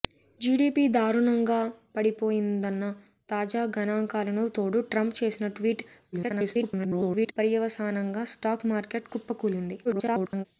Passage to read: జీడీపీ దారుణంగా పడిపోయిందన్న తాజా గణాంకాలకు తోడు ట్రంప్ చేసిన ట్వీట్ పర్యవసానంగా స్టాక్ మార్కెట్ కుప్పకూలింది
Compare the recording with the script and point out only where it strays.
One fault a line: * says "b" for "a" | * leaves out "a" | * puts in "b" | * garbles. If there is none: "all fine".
* garbles
* garbles